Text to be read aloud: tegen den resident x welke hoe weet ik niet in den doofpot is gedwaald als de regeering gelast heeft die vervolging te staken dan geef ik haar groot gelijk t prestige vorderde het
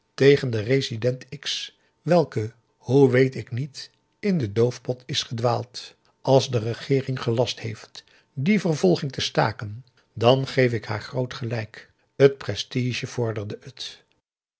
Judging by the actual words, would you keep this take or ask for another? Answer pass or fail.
pass